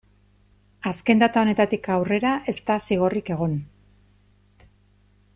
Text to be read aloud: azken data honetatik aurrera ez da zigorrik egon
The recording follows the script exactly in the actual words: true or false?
true